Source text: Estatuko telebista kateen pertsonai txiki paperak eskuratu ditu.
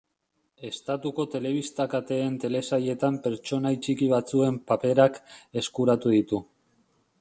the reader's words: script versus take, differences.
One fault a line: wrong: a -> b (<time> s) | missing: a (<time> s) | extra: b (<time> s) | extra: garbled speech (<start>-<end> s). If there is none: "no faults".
extra: telesailetan (2.5 s)
extra: batzuen (4.1 s)